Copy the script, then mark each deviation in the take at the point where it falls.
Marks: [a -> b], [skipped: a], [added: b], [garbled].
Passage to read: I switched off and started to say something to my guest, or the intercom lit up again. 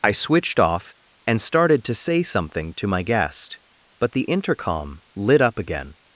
I switched off and started to say something to my guest, [or -> but] the intercom lit up again.